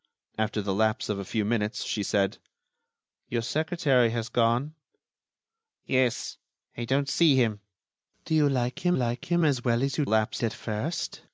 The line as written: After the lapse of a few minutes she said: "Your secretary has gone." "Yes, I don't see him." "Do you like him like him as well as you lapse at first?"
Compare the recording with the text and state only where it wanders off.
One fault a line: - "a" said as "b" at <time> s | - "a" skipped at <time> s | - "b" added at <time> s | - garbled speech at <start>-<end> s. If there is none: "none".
none